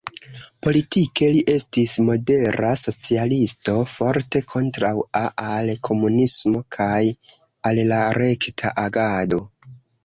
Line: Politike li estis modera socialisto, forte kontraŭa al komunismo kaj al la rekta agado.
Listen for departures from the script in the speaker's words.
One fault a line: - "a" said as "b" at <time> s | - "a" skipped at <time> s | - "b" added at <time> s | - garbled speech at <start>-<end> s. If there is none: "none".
none